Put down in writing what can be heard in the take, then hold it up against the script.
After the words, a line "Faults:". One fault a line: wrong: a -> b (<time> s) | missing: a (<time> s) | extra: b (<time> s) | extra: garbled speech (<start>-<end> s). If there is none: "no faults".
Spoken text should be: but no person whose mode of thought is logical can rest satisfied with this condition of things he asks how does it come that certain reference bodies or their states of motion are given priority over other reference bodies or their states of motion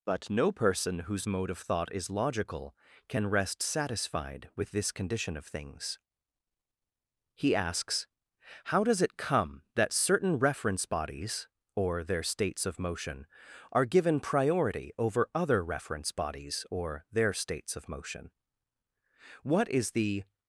but no person whose mode of thought is logical can rest satisfied with this condition of things he asks how does it come that certain reference bodies or their states of motion are given priority over other reference bodies or their states of motion what is the
Faults:
extra: what is the (19.4 s)